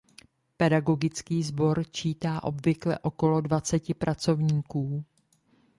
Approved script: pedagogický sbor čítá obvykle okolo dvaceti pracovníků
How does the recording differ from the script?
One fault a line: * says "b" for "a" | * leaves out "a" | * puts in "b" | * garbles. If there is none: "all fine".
all fine